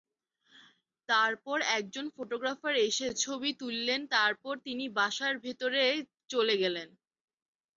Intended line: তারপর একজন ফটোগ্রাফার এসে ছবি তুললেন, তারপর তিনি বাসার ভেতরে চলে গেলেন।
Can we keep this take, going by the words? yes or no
yes